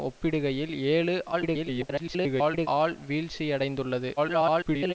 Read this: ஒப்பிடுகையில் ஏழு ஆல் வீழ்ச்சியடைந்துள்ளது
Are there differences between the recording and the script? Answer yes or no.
yes